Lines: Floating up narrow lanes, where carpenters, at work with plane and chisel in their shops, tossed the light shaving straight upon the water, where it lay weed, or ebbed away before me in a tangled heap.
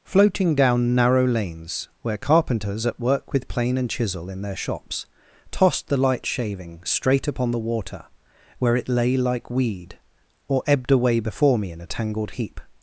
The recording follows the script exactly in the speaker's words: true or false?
false